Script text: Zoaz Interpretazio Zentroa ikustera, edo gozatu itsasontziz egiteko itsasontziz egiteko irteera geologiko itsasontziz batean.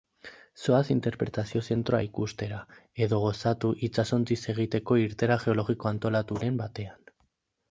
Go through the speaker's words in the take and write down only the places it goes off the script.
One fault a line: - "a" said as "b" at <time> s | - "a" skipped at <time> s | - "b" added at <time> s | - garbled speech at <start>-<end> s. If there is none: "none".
- "itsasontziz egiteko" skipped at 5.0 s
- "itsasontziz" said as "antolaturen" at 5.9 s